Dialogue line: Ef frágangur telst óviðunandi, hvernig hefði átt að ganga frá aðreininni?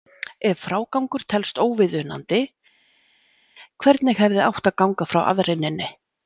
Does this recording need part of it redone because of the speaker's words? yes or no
no